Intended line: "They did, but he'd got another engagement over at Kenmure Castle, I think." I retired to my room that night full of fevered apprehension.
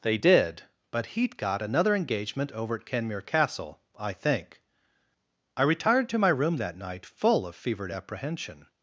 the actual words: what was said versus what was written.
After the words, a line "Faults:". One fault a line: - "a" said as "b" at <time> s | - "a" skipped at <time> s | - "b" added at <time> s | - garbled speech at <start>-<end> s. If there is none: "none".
"They did, but he'd got another engagement over at Kenmure Castle, I think." I retired to my room that night full of fevered apprehension.
Faults:
none